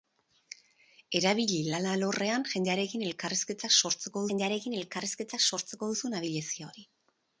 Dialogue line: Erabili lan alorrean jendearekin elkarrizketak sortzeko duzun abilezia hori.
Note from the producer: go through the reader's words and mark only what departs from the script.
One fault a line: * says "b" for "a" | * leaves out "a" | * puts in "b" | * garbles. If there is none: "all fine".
* puts in "jendearekin elkarrizketak sortzeko"